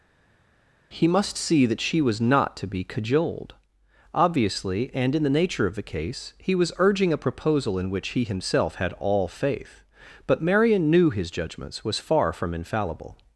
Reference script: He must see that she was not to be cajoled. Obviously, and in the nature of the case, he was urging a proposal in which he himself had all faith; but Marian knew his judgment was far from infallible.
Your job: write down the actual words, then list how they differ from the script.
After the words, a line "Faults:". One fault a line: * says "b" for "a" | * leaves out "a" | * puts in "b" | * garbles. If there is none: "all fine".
He must see that she was not to be cajoled. Obviously, and in the nature of the case, he was urging a proposal in which he himself had all faith; but Marian knew his judgments was far from infallible.
Faults:
* says "judgments" for "judgment"